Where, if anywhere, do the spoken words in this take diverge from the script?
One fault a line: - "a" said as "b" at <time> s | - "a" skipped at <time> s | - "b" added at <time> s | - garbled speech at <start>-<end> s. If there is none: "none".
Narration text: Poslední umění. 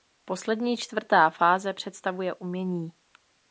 - "čtvrtá fáze představuje" added at 0.8 s